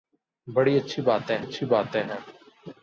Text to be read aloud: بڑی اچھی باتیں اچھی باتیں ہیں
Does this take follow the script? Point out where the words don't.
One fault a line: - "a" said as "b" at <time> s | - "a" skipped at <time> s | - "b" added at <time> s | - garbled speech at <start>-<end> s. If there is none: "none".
none